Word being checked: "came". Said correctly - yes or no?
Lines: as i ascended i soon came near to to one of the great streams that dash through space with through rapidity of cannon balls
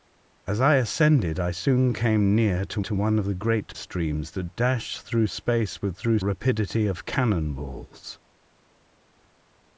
yes